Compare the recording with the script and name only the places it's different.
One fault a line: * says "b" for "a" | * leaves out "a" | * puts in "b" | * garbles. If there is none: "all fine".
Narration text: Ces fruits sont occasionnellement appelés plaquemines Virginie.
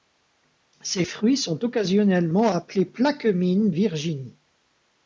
all fine